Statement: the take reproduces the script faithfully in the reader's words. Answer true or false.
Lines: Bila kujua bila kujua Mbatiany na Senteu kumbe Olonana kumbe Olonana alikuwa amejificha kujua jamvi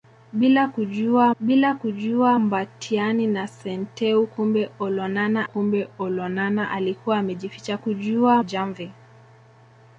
true